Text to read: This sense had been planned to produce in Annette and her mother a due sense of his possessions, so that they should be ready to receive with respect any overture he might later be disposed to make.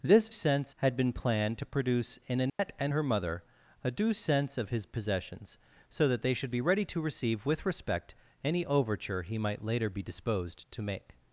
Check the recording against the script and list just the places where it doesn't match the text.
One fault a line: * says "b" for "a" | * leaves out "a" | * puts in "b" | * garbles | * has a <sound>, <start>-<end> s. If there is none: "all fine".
* has a dropout, 2.5-2.6 s